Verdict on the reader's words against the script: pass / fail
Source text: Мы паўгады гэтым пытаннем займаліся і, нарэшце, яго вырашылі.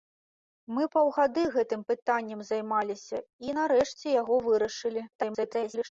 fail